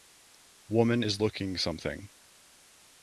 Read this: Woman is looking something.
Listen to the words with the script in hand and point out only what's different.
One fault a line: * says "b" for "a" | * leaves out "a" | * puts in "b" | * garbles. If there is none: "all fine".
all fine